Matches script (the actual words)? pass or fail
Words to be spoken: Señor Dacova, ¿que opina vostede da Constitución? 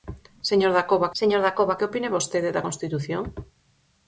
fail